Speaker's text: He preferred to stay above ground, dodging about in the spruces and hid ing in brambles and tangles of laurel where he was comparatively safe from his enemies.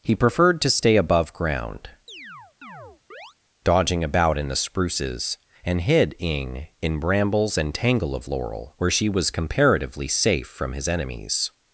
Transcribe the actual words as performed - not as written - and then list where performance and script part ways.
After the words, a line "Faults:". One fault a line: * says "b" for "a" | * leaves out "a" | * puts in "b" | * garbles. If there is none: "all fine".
He preferred to stay above ground, dodging about in the spruces and hid ing in brambles and tangle of laurel where she was comparatively safe from his enemies.
Faults:
* says "tangle" for "tangles"
* says "she" for "he"